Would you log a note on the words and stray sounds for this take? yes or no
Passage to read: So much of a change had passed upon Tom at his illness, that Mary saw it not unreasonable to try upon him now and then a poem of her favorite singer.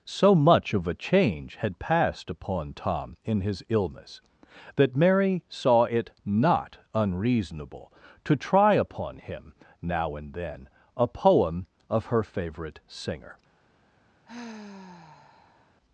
yes